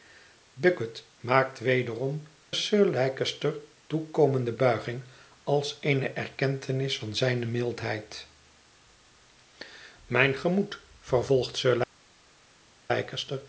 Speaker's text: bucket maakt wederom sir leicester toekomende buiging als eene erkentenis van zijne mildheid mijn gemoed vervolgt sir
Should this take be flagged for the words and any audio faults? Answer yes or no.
no